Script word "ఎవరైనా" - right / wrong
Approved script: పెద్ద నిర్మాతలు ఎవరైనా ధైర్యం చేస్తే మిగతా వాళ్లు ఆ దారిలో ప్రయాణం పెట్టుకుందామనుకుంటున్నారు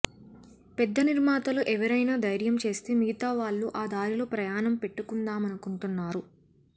right